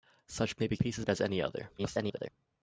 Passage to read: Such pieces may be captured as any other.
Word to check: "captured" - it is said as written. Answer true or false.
false